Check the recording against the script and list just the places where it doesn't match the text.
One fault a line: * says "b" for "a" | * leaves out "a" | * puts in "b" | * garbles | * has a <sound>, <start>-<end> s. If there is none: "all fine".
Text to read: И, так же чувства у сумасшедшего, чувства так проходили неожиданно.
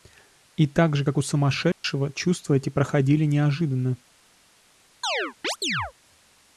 * says "как" for "чувства"
* has a dropout, 1.7-1.8 s
* says "эти" for "так"
* has a chirp, 5.0-5.9 s